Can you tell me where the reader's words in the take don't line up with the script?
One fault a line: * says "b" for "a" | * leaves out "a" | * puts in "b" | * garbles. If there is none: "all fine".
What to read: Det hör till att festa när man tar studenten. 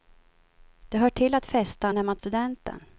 * leaves out "tar"